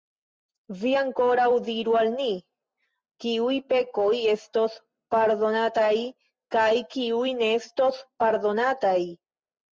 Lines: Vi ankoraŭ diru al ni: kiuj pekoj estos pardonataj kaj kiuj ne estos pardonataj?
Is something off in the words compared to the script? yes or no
no